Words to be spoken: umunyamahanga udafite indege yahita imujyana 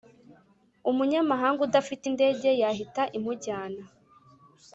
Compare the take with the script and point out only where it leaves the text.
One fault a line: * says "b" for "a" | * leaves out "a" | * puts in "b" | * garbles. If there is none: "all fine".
all fine